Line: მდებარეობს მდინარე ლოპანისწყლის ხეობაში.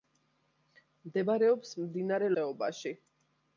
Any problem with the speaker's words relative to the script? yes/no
yes